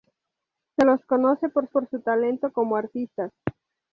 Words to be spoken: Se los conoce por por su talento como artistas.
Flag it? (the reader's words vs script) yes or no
no